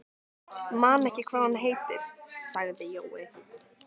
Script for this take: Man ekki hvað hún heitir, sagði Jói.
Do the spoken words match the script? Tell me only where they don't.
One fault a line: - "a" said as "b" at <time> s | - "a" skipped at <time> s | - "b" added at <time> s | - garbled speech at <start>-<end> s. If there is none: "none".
none